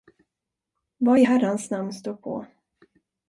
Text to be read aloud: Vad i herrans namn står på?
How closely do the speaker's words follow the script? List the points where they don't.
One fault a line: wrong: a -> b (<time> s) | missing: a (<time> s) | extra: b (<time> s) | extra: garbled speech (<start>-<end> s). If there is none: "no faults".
no faults